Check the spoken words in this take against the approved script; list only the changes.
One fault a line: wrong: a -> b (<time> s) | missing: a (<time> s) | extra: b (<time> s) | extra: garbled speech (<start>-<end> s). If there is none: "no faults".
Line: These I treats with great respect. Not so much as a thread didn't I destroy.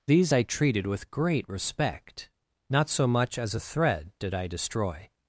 wrong: treats -> treated (0.4 s)
wrong: didn't -> did (4.2 s)